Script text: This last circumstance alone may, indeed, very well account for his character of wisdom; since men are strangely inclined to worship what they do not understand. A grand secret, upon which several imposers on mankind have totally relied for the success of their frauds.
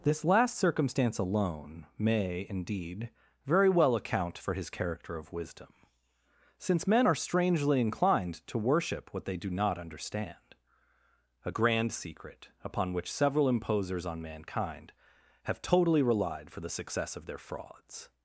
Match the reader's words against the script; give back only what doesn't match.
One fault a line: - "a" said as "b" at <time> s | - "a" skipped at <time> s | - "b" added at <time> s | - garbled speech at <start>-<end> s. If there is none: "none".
none